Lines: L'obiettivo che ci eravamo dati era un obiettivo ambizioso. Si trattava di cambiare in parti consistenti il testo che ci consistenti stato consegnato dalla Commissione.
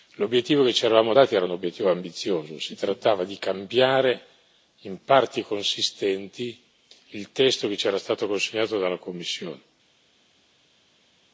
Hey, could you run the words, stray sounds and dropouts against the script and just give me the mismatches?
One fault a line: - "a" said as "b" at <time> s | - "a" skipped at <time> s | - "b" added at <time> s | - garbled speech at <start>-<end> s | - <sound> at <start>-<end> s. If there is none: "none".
- "consistenti" said as "era" at 7.9 s